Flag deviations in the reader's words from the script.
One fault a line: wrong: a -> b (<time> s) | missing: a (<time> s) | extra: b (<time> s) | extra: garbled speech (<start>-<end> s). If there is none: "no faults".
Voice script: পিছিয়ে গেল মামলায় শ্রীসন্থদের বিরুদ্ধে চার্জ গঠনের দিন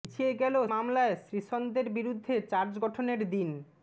no faults